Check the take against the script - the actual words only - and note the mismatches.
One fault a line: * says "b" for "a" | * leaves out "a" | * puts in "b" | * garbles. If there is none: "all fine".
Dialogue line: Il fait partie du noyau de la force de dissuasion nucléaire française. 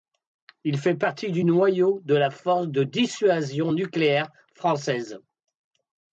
all fine